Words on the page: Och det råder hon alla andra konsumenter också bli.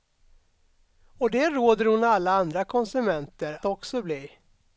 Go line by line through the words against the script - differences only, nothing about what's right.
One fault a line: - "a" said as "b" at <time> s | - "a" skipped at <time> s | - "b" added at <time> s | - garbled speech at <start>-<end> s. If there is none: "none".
none